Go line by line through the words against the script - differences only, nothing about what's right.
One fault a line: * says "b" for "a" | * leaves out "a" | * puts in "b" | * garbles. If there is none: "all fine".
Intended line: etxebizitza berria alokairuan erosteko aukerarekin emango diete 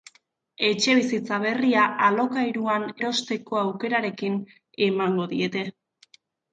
all fine